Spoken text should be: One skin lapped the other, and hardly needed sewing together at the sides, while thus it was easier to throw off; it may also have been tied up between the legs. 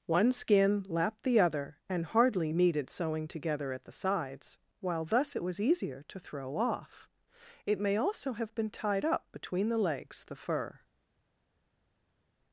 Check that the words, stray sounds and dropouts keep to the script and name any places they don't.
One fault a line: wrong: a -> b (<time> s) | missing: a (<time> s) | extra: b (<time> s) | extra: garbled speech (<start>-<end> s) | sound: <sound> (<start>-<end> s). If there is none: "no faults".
extra: The fur (10.3 s)